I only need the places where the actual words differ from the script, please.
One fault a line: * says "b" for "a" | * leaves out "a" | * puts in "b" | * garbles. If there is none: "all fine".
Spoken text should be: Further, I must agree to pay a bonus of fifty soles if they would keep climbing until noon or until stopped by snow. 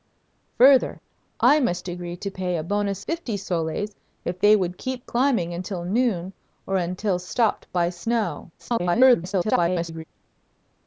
* leaves out "of"
* garbles